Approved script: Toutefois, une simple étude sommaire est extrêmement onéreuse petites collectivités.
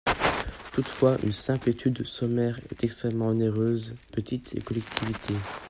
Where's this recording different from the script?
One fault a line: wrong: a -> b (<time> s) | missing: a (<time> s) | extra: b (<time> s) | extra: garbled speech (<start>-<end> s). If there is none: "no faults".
no faults